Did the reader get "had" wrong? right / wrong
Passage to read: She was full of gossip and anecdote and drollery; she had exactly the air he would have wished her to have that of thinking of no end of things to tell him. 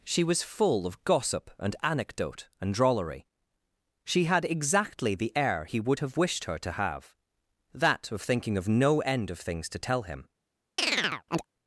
right